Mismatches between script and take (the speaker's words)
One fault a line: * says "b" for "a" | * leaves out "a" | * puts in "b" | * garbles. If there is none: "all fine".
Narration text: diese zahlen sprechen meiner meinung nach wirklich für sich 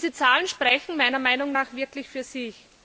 all fine